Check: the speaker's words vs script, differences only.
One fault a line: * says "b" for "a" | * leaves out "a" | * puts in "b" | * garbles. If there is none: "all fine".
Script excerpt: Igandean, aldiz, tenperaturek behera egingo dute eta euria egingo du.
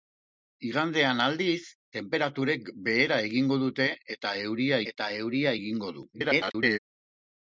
* puts in "eta euria"
* garbles